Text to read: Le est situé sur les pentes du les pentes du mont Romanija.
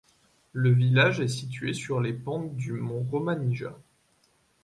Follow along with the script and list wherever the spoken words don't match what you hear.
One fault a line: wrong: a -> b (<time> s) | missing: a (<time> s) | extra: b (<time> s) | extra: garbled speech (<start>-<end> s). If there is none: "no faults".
extra: village (0.7 s)
missing: les pentes du (2.7 s)